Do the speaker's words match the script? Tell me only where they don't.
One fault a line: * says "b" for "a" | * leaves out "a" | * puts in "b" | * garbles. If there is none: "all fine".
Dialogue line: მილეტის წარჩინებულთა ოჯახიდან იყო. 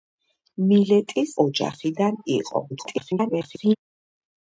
* leaves out "წარჩინებულთა"
* garbles